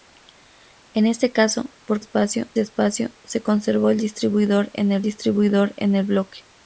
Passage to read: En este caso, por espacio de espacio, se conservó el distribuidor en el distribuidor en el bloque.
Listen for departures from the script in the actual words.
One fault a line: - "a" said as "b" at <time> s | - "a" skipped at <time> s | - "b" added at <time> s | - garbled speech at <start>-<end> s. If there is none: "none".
none